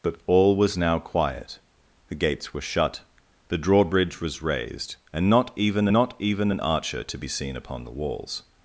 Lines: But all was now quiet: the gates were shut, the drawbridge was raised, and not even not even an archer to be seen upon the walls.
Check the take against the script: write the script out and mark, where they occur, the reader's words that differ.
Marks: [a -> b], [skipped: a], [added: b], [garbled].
But all was now quiet: the gates were shut, the drawbridge was raised, and not even not even an archer to be seen upon the walls.